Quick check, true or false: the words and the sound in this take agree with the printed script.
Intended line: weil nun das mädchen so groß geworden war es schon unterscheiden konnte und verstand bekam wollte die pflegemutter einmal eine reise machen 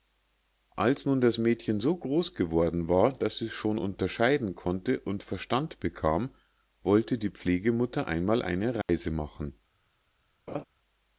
false